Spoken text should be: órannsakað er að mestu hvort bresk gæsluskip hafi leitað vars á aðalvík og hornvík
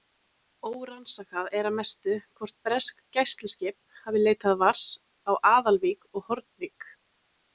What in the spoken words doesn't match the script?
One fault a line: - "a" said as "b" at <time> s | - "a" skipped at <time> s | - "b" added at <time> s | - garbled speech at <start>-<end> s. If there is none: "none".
none